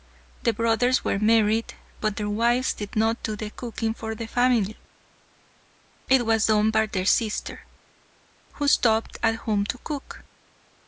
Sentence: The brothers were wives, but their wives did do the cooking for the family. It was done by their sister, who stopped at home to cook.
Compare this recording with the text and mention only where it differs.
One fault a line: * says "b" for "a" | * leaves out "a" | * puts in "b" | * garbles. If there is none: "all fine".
* says "married" for "wives"
* puts in "not"